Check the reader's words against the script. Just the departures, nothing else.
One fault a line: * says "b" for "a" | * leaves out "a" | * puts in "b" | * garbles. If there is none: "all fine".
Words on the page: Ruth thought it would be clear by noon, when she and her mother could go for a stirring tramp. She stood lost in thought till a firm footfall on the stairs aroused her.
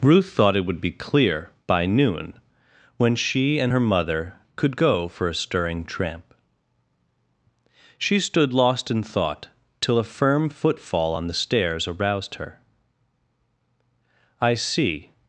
* puts in "I see"